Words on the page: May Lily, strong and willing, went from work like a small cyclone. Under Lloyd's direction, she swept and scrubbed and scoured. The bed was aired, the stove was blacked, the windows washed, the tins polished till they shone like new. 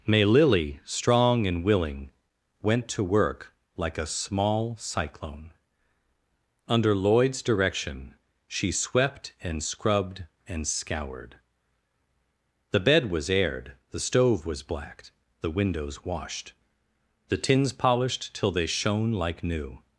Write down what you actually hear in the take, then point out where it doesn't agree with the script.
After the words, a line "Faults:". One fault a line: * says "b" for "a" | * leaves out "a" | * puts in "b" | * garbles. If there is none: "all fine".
May Lily, strong and willing, went to work like a small cyclone. Under Lloyd's direction, she swept and scrubbed and scoured. The bed was aired, the stove was blacked, the windows washed, the tins polished till they shone like new.
Faults:
* says "to" for "from"